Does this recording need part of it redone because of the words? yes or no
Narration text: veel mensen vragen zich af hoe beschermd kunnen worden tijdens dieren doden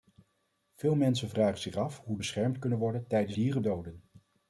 no